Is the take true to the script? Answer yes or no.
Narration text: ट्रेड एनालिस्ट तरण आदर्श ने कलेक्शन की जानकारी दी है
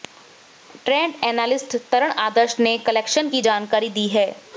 yes